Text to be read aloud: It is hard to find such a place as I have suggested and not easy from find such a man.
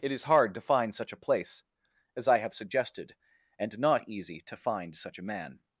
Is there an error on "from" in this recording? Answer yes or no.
yes